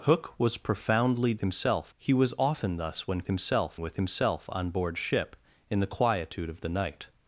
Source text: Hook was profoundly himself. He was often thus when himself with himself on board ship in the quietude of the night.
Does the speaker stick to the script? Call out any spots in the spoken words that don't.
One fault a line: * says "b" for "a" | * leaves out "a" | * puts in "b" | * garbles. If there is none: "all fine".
all fine